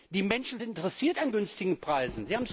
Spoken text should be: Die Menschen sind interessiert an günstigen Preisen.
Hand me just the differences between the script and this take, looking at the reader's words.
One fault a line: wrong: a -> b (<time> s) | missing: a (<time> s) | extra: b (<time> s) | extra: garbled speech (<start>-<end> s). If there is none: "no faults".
no faults